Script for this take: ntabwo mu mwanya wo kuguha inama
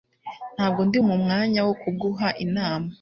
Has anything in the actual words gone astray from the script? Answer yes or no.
yes